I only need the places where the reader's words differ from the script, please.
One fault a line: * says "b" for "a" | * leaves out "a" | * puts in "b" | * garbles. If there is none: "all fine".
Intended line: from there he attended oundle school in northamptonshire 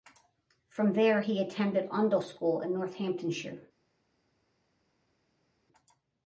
all fine